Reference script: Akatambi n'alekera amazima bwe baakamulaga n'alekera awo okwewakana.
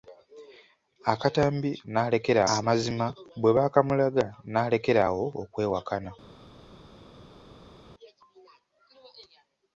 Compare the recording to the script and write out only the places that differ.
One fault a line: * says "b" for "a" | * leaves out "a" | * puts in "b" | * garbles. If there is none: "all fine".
all fine